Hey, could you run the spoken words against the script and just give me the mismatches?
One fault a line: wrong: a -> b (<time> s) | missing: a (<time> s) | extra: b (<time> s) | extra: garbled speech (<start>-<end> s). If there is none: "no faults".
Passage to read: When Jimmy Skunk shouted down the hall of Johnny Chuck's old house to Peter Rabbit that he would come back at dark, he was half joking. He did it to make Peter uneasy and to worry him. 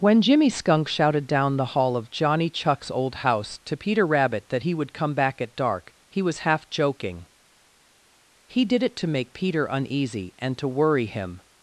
no faults